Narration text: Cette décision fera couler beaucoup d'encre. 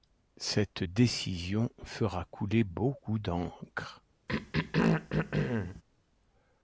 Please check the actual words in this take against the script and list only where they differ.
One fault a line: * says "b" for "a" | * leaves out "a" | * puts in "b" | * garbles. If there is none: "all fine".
all fine